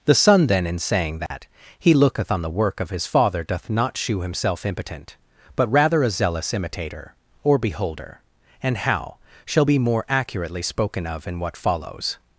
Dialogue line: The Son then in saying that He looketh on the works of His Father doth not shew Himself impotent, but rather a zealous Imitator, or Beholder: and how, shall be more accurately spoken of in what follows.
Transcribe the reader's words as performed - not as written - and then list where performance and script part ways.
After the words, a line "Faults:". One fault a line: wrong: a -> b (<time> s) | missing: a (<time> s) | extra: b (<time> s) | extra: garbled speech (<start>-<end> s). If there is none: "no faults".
The Son then in saying that He looketh on the work of His Father doth not shew Himself impotent, but rather a zealous Imitator, or Beholder: and how, shall be more accurately spoken of in what follows.
Faults:
wrong: works -> work (2.5 s)